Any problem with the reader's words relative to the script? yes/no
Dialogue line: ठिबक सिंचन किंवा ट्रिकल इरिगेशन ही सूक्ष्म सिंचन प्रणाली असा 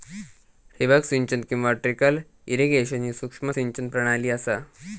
no